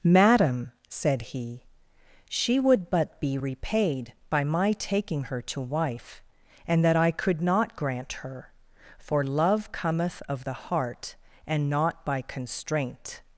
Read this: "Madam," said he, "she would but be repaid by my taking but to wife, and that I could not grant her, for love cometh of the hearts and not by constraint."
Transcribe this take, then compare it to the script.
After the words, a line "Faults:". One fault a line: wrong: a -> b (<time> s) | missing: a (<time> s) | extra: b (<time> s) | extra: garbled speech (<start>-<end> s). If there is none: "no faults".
"Madam," said he, "she would but be repaid by my taking her to wife, and that I could not grant her, for love cometh of the heart and not by constraint."
Faults:
wrong: but -> her (5.2 s)
wrong: hearts -> heart (10.7 s)